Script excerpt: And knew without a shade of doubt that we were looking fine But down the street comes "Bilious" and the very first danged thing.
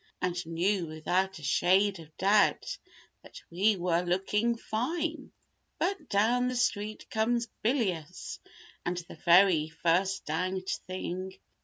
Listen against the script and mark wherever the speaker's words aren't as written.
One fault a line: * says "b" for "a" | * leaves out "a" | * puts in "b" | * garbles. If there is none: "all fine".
all fine